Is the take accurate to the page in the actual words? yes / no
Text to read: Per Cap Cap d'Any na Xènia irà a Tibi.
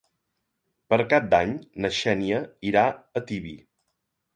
no